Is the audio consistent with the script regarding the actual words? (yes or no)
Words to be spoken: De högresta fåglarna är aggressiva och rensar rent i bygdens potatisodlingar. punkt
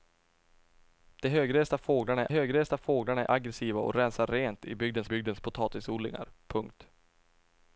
no